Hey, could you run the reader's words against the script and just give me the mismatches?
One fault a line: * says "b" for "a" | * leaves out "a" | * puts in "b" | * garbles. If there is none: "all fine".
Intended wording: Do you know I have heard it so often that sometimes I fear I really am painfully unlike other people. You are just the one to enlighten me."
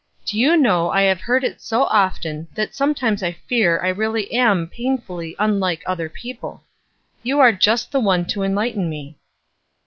all fine